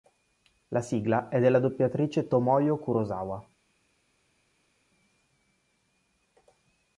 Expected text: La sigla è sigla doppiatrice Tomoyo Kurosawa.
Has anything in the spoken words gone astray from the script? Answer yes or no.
yes